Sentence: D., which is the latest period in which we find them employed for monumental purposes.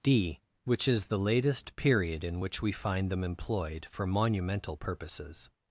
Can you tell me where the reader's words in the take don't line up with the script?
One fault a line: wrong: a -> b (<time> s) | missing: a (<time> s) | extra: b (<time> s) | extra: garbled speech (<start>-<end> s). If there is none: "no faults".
no faults